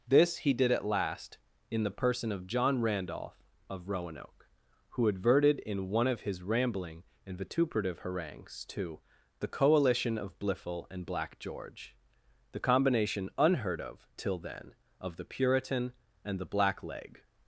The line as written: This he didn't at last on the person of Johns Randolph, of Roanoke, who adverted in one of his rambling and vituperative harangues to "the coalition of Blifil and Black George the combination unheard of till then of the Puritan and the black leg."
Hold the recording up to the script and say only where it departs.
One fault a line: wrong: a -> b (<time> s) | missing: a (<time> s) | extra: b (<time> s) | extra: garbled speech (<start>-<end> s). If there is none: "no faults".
wrong: didn't -> did (0.5 s)
wrong: on -> in (1.7 s)
wrong: Johns -> John (2.5 s)